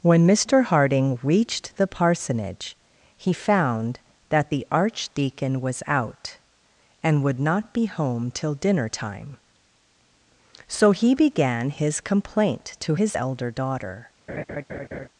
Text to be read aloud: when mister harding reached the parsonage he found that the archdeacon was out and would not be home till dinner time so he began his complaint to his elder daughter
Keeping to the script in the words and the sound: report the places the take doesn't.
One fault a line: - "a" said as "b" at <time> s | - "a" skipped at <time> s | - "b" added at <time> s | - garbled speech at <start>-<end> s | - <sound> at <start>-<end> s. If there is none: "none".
- laugh at 14.3-15.1 s